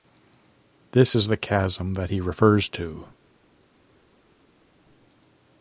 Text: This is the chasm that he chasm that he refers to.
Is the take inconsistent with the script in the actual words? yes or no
yes